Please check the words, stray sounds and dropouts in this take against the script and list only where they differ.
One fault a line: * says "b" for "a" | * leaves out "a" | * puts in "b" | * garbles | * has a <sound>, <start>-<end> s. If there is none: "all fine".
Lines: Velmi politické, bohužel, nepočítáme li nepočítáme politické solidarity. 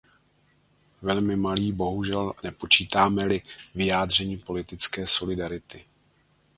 * says "malý" for "politické"
* says "vyjádření" for "nepočítáme"